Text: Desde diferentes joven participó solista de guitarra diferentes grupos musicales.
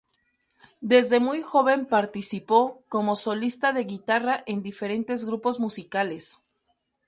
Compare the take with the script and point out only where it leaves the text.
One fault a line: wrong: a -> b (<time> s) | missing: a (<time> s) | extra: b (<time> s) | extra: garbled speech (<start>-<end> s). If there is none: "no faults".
wrong: diferentes -> muy (1.2 s)
extra: como (2.9 s)
extra: en (4.5 s)